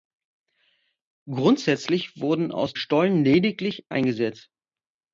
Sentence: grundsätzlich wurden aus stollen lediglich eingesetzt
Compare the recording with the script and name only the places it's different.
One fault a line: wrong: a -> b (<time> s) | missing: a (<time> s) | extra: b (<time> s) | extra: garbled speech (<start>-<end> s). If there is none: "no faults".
no faults